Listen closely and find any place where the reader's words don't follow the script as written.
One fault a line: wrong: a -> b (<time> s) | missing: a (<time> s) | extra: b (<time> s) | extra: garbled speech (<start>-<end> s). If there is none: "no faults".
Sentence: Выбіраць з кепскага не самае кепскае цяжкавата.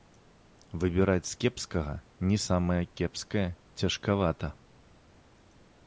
no faults